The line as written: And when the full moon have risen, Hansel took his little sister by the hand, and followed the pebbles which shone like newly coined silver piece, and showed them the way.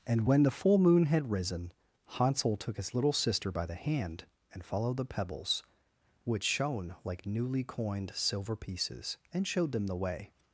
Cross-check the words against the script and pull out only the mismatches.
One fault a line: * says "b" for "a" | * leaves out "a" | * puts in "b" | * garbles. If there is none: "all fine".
* says "had" for "have"
* says "pieces" for "piece"